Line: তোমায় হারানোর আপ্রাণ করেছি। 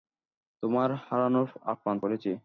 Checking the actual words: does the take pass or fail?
pass